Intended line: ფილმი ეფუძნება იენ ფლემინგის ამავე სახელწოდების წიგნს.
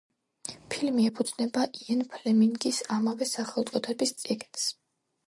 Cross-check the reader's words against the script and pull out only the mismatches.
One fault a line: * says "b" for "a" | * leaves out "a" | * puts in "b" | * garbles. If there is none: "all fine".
all fine